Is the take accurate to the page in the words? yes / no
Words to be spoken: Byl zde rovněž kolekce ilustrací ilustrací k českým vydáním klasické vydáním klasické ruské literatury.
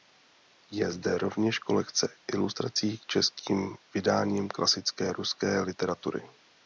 no